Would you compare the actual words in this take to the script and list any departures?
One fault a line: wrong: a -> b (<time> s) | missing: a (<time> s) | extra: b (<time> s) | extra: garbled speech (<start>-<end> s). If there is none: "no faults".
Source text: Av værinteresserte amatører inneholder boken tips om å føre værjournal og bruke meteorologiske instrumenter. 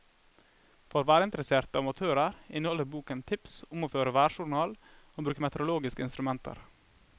wrong: Av -> For (0.9 s)